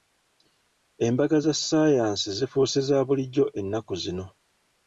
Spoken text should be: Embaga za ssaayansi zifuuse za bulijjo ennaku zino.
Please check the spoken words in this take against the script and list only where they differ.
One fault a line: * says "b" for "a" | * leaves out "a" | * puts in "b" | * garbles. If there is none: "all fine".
all fine